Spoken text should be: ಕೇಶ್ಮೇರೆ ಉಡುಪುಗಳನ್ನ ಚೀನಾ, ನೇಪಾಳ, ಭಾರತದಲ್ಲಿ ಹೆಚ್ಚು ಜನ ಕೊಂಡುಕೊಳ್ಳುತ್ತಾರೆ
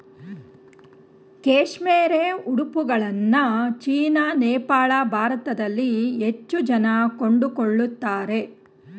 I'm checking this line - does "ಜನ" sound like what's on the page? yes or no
yes